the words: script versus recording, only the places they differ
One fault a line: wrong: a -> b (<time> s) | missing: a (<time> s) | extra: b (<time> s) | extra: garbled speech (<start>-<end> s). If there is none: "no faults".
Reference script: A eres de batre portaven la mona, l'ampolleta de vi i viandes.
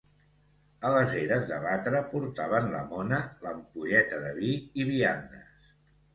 extra: les (0.9 s)